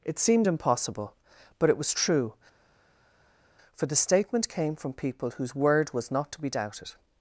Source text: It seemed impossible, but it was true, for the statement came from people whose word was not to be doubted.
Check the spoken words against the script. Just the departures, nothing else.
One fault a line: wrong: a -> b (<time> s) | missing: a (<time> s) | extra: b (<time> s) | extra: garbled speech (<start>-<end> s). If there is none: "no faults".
no faults